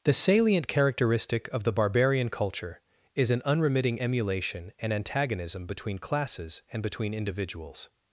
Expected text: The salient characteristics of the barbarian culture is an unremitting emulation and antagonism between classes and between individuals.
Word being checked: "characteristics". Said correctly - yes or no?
no